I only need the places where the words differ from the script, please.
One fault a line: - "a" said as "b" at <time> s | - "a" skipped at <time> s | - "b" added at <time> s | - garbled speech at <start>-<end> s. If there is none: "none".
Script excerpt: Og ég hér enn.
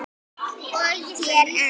none